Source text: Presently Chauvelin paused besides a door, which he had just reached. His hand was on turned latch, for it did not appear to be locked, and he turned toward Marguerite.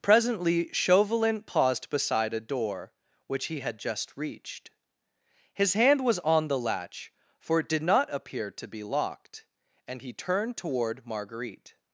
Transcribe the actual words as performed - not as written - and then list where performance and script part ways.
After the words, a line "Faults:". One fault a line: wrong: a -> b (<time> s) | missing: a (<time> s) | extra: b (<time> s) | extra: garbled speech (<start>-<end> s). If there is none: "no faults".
Presently Chauvelin paused beside a door, which he had just reached. His hand was on the latch, for it did not appear to be locked, and he turned toward Marguerite.
Faults:
wrong: besides -> beside (1.9 s)
wrong: turned -> the (6.5 s)